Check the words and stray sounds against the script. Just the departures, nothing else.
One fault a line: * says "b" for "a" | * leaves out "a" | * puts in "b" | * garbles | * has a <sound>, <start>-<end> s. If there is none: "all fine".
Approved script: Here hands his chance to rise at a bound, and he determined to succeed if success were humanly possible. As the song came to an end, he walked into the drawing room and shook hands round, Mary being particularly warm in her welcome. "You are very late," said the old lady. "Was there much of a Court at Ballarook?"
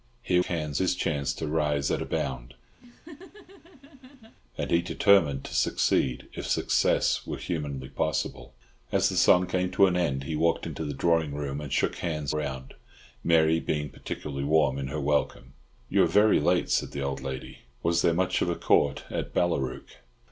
* has a laugh, 2.8-4.3 s